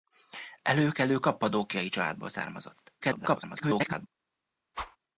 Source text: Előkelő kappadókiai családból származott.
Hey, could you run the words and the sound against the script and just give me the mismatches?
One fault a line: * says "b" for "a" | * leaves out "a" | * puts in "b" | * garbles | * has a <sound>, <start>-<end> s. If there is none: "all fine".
* garbles
* has a whoosh, 4.7-5.0 s